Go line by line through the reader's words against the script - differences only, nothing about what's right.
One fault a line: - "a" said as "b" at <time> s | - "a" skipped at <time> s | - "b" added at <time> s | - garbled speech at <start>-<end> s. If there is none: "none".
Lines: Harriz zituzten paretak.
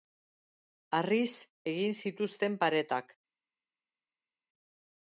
- "egin" added at 1.7 s